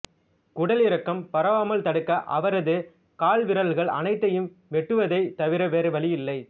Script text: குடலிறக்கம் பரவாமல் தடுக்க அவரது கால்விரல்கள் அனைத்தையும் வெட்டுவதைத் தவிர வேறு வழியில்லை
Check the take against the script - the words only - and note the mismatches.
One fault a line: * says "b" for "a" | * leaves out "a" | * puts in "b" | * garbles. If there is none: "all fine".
all fine